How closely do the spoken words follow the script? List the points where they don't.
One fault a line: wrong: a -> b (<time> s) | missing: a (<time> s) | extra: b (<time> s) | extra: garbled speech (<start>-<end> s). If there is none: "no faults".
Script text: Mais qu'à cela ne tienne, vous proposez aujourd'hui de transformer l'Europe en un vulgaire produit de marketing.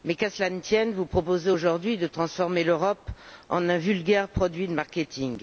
no faults